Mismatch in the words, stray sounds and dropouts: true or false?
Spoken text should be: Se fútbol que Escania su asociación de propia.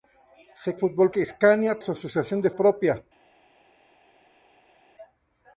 false